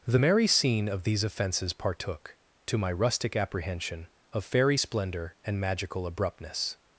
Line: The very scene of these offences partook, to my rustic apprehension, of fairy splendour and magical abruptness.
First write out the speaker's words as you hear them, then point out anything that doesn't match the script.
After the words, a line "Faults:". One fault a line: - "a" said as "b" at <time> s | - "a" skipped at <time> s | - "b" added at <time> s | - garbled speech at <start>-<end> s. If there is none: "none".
The merry scene of these offences partook, to my rustic apprehension, of fairy splendour and magical abruptness.
Faults:
- "very" said as "merry" at 0.2 s